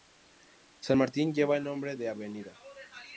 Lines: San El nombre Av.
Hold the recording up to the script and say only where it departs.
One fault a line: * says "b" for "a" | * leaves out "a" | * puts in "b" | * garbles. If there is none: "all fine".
* puts in "Martín lleva"
* puts in "de"